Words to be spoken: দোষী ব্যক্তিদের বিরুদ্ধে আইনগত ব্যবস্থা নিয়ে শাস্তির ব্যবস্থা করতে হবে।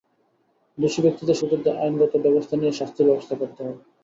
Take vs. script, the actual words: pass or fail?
pass